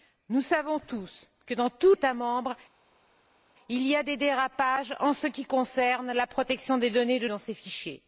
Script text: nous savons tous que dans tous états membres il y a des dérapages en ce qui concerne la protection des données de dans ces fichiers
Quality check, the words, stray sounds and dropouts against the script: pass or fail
pass